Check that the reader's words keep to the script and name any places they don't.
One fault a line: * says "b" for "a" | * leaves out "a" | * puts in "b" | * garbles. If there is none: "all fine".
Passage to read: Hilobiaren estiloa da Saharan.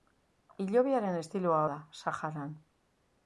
all fine